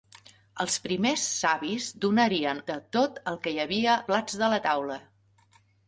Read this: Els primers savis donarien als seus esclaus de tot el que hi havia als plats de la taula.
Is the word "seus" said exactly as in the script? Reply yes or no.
no